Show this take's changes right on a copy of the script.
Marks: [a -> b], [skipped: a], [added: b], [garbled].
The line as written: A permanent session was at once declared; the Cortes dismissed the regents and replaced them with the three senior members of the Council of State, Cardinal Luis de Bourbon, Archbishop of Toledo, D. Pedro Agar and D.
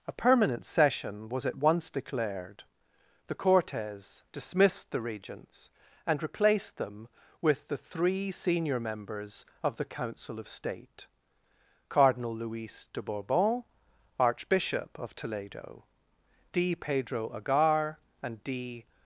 A permanent session was at once declared; the Cortes dismissed the regents and replaced them with the three senior members of the Council of State, Cardinal Luis de Bourbon, Archbishop of Toledo, D. Pedro Agar and D.